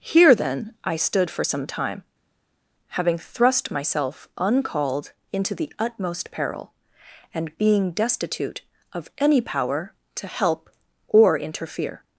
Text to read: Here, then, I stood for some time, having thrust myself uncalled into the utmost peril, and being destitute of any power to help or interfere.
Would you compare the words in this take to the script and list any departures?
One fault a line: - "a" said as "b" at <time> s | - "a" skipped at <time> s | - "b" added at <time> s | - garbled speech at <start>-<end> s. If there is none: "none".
none